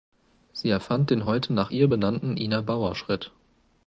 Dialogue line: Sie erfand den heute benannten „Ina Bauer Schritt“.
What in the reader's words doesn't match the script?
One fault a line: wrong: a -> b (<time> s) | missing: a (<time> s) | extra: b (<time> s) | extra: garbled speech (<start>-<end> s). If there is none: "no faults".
extra: nach ihr (1.5 s)